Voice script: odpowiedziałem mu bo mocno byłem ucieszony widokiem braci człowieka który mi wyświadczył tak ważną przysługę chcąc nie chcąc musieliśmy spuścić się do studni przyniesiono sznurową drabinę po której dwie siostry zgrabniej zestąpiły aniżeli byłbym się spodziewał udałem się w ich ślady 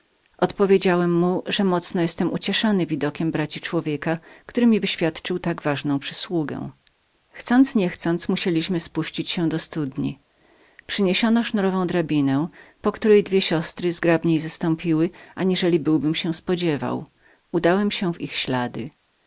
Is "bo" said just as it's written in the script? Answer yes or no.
no